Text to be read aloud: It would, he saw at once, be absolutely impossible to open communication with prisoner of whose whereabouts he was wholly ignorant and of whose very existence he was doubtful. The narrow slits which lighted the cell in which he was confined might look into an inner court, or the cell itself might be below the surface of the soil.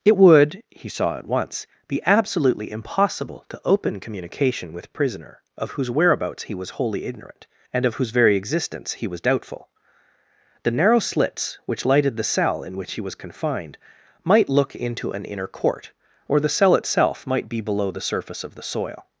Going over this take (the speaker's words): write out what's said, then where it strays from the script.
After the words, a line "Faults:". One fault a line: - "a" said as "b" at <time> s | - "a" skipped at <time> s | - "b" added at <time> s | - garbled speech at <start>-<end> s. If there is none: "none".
It would, he saw at once, be absolutely impossible to open communication with prisoner of whose whereabouts he was wholly ignorant and of whose very existence he was doubtful. The narrow slits which lighted the cell in which he was confined might look into an inner court, or the cell itself might be below the surface of the soil.
Faults:
none